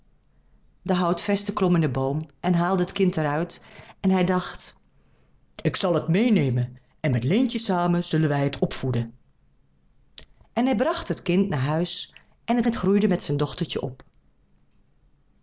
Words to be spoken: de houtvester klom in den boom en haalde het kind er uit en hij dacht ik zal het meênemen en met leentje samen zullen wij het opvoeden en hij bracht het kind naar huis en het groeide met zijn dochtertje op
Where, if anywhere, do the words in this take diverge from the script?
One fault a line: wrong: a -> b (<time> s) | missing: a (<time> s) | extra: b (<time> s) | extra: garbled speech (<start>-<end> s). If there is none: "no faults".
extra: het (12.6 s)